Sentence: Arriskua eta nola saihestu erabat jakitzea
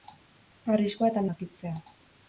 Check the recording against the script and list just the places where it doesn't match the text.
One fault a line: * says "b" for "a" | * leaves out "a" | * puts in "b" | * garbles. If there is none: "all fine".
* leaves out "nola saihestu erabat"